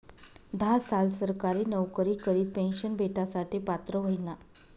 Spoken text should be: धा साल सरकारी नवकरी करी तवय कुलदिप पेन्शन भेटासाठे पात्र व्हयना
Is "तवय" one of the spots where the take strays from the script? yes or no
yes